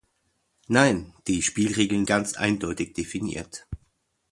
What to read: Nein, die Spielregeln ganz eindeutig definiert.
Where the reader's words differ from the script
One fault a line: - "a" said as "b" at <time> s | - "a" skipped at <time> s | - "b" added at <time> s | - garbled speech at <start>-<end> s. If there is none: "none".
none